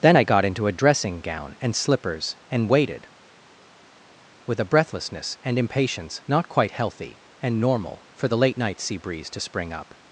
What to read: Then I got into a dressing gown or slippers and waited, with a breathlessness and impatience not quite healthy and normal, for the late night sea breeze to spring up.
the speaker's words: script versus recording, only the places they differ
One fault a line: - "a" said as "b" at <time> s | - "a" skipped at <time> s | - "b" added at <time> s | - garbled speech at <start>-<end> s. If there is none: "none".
- "or" said as "and" at 1.6 s